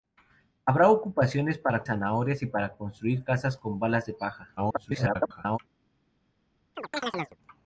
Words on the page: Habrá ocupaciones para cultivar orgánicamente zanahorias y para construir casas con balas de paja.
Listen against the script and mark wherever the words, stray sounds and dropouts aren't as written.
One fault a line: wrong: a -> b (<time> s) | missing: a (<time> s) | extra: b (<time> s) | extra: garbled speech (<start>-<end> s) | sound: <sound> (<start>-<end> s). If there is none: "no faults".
missing: cultivar orgánicamente (1.8 s)
extra: garbled speech (4.6-5.6 s)
sound: chirp (6.8-7.4 s)